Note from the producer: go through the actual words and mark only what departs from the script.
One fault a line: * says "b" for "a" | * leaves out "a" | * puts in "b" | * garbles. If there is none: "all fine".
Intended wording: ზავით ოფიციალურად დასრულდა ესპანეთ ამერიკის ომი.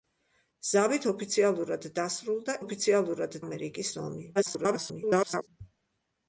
* says "ოფიციალურად" for "ესპანეთ"
* garbles